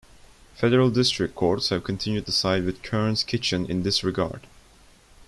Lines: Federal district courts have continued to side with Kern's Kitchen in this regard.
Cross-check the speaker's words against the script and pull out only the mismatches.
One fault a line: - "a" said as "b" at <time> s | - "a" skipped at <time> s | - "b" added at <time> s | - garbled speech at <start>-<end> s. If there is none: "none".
none